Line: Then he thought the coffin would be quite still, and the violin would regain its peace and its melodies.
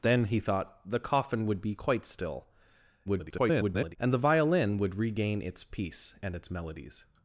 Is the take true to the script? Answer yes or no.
no